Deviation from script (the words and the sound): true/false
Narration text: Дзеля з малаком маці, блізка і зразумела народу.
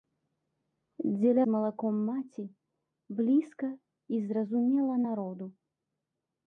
false